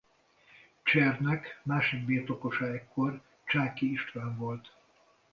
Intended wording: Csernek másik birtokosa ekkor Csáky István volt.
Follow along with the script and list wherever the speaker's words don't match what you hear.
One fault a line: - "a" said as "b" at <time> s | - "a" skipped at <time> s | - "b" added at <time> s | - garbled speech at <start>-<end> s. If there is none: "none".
none